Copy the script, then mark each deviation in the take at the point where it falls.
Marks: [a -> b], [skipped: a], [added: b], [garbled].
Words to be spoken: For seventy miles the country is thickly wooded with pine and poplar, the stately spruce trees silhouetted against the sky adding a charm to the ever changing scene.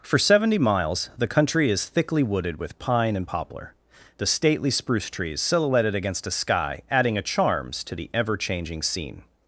For seventy miles the country is thickly wooded with pine and poplar, the stately spruce trees silhouetted against [the -> a] sky adding a [charm -> charms] to the ever changing scene.